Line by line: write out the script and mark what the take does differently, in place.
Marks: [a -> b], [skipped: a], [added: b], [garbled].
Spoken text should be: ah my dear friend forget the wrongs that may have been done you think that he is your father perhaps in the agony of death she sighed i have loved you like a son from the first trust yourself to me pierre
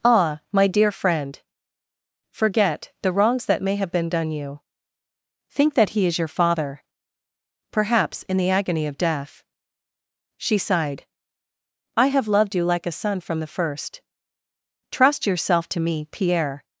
ah my dear friend forget the wrongs that may have been done you think that he is your father perhaps in the agony of death she sighed i have loved you like a son from the first trust yourself to me pierre